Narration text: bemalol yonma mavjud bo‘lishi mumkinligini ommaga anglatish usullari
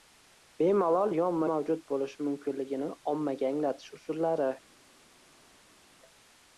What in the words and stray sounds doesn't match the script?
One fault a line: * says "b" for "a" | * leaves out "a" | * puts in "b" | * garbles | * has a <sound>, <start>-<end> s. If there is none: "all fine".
all fine